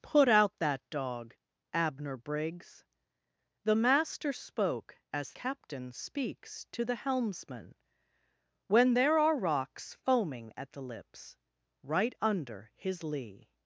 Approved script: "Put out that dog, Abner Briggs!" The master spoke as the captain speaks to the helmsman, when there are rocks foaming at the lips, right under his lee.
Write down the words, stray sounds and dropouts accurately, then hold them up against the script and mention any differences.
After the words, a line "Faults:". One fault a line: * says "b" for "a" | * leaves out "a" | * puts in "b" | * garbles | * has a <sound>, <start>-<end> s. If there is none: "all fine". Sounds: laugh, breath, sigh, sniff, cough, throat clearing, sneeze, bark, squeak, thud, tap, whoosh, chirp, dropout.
"Put out that dog, Abner Briggs!" The master spoke as captain speaks to the helmsman, when there are rocks foaming at the lips, right under his lee.
Faults:
* leaves out "the"